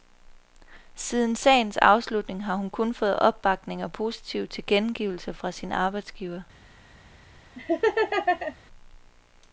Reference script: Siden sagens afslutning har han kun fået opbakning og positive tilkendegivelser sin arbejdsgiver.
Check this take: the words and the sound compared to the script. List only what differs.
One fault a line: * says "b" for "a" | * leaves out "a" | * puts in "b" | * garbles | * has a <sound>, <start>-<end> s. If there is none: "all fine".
* says "hun" for "han"
* puts in "fra"
* has a laugh, 7.6-8.6 s